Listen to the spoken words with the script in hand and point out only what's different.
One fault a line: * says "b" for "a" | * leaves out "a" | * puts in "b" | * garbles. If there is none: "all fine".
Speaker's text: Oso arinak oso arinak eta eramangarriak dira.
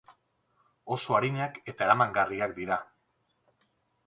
* leaves out "oso arinak"